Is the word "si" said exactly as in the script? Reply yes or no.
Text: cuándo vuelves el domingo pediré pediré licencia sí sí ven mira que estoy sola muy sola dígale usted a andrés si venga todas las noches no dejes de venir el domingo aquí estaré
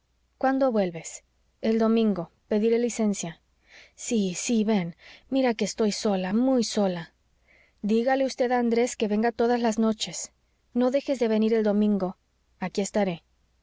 no